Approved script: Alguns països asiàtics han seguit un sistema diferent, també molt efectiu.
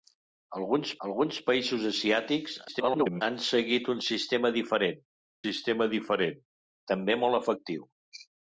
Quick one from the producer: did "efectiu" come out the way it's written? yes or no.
yes